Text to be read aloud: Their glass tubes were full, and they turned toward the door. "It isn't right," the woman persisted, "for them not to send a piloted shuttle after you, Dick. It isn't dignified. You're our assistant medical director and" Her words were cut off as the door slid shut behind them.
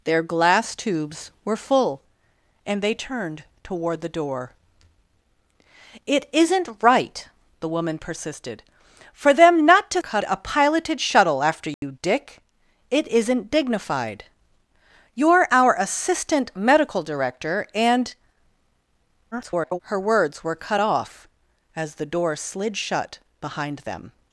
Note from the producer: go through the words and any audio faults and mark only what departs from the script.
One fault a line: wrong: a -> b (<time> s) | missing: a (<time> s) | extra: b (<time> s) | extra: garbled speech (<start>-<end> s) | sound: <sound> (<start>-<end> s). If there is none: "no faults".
wrong: send -> cut (10.0 s)
sound: dropout (11.7-11.8 s)
extra: garbled speech (19.3-19.8 s)